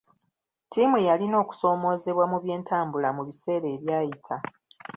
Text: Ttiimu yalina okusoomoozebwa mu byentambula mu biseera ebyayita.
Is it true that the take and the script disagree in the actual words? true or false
false